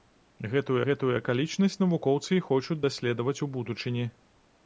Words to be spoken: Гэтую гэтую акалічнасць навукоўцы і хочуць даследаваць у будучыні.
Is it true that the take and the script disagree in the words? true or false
false